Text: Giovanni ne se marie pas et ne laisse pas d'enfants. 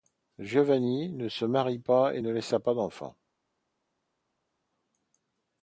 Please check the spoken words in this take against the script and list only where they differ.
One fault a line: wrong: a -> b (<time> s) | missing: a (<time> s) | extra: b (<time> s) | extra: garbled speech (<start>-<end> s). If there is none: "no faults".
no faults